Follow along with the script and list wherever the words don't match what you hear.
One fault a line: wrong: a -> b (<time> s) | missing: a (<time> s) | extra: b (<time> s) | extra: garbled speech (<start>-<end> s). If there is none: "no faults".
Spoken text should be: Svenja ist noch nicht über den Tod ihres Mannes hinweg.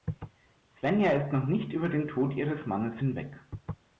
no faults